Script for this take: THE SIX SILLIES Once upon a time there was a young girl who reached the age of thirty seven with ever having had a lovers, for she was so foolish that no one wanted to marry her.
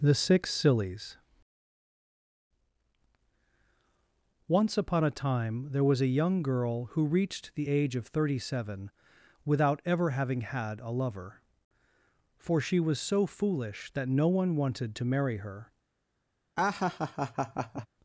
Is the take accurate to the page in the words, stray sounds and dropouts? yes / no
no